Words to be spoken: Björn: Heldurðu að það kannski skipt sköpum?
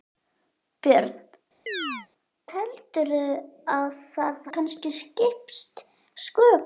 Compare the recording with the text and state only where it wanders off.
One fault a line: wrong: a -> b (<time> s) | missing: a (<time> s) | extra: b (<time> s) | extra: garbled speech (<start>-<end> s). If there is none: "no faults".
no faults